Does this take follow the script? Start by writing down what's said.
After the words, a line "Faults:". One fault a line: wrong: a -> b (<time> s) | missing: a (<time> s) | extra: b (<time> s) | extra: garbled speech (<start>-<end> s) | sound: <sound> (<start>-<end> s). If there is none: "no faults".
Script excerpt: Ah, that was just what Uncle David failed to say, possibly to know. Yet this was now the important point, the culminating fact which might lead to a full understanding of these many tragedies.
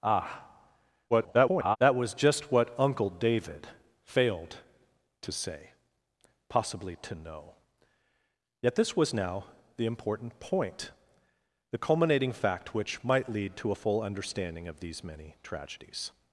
Ah, [garbled] that was just what Uncle David failed to say, possibly to know. Yet this was now the important point, the culminating fact which might lead to a full understanding of these many tragedies.
Faults:
extra: garbled speech (1.1-1.8 s)